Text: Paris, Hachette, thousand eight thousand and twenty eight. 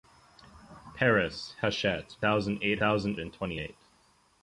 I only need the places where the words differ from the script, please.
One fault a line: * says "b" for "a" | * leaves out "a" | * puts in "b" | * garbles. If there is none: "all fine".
all fine